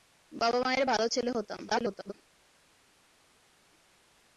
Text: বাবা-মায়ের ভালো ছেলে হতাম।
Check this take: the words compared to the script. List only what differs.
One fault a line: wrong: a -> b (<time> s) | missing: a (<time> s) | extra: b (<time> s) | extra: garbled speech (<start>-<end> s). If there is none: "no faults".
extra: garbled speech (1.7-2.1 s)